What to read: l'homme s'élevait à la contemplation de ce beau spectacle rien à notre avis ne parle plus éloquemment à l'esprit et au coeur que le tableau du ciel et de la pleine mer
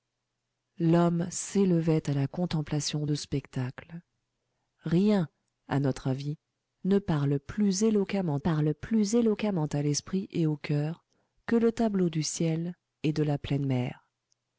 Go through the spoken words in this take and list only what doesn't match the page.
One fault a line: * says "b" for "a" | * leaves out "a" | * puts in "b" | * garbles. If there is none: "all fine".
* leaves out "ce beau"
* puts in "parle plus éloquemment"